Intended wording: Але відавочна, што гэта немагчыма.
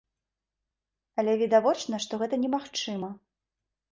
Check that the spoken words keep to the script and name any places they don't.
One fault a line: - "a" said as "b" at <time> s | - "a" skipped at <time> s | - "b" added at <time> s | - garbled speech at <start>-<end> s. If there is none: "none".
none